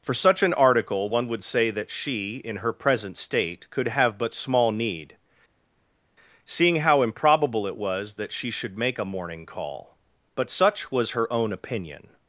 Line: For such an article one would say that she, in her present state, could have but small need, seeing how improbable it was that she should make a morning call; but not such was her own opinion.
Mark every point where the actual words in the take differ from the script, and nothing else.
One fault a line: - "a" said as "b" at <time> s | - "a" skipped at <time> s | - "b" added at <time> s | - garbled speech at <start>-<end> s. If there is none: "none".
- "not" skipped at 10.5 s